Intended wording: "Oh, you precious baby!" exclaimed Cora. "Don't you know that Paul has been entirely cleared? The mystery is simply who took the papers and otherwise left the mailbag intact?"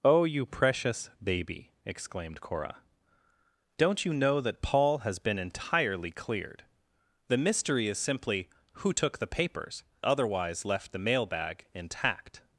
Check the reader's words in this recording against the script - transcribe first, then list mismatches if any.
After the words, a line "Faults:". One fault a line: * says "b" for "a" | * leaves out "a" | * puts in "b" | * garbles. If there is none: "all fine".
"Oh, you precious baby!" exclaimed Cora. "Don't you know that Paul has been entirely cleared? The mystery is simply who took the papers otherwise left the mailbag intact?"
Faults:
* leaves out "and"